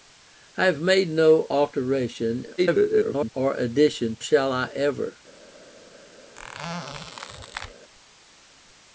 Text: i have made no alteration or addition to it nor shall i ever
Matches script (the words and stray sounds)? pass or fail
fail